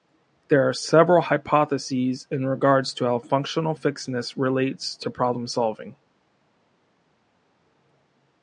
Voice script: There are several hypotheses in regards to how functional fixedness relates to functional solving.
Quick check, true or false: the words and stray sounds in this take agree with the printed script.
false